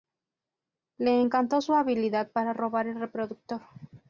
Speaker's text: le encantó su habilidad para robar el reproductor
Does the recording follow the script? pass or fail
pass